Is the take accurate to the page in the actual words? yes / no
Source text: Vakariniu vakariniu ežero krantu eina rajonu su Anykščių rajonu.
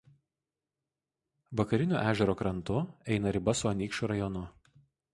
no